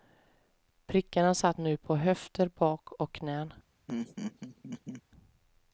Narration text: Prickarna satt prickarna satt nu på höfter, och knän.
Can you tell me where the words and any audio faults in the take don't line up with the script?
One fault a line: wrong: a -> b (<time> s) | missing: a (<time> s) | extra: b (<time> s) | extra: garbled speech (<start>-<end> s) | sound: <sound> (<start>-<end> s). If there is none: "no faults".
missing: prickarna satt (1.6 s)
extra: bak (2.5 s)
sound: laugh (3.9-5.0 s)